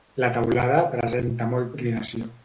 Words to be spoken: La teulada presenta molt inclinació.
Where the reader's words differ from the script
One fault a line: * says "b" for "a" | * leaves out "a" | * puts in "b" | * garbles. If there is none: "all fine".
all fine